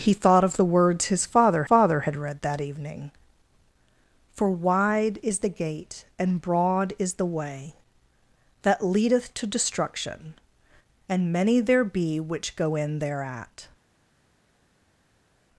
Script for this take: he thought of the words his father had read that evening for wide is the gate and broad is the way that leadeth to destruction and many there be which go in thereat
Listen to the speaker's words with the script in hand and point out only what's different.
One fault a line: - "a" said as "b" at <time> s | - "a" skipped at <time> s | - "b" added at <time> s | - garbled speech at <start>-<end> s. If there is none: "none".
- "father" added at 1.6 s